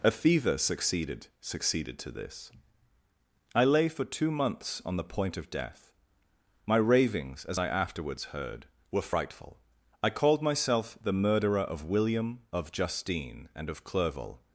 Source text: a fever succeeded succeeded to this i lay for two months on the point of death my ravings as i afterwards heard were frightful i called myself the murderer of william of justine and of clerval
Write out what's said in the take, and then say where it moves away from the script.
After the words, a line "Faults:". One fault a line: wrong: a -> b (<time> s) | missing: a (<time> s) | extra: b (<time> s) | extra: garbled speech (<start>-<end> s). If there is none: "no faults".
a fever succeeded succeeded to this i lay for two months on the point of death my ravings as i afterwards heard were frightful i called myself the murderer of william of justine and of clerval
Faults:
no faults